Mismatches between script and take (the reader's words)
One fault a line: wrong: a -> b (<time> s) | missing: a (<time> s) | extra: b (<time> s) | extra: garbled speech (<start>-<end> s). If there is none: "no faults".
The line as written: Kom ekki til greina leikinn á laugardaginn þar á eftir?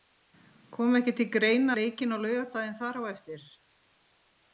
no faults